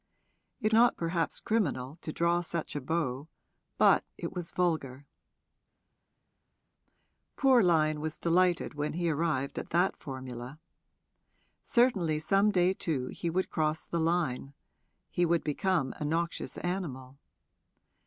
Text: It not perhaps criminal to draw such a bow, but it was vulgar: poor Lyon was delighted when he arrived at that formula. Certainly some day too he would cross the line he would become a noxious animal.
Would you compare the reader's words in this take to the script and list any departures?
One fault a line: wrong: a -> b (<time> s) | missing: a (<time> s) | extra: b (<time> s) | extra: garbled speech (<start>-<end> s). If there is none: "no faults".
no faults